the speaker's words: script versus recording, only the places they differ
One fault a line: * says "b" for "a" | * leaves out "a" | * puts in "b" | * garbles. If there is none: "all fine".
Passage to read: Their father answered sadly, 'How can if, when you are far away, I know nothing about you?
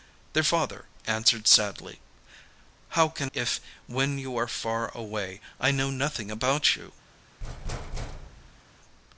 all fine